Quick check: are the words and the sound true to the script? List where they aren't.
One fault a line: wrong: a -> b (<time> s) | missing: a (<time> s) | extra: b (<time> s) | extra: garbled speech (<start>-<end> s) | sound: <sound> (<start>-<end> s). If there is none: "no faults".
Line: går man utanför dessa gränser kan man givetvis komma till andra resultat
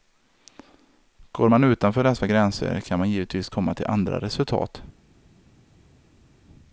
no faults